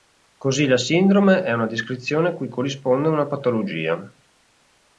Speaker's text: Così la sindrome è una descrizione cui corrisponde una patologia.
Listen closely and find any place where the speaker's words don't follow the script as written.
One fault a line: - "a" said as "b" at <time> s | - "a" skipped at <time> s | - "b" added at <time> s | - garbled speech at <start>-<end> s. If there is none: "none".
none